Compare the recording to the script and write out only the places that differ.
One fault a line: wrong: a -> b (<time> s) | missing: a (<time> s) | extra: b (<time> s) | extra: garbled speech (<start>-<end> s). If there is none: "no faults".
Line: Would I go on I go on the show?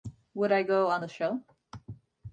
missing: I go on (1.1 s)